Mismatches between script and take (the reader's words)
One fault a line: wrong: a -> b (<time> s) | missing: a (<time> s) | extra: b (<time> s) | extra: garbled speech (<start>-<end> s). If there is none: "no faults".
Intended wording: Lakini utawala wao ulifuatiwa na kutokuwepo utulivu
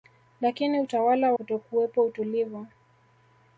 missing: wao ulifuatiwa na (1.3 s)